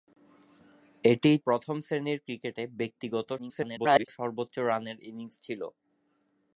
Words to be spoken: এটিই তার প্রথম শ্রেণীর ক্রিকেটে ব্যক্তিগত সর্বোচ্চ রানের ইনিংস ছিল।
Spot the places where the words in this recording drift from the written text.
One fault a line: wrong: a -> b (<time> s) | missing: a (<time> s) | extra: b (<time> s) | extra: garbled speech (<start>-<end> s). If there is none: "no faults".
missing: তার (1.4 s)
extra: garbled speech (3.4-4.1 s)